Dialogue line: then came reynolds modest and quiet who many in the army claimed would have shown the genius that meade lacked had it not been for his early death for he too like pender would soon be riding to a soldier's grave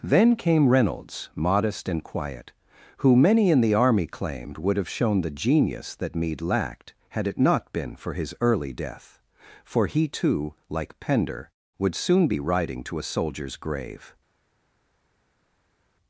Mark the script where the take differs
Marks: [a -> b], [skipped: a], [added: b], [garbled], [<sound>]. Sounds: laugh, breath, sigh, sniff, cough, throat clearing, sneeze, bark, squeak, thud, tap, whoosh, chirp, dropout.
then came reynolds modest and quiet who many in the army claimed would have shown the genius that meade lacked had it not been for his early death for he too like pender would soon be riding to a soldier's grave